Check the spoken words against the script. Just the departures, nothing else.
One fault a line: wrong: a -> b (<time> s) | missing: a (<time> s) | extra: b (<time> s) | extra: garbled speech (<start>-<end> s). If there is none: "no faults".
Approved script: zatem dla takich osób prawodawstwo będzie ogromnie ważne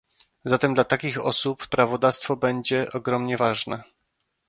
no faults